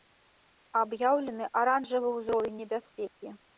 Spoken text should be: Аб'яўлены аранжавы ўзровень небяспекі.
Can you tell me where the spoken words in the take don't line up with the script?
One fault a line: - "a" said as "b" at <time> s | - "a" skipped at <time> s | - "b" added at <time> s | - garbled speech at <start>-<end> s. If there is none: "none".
none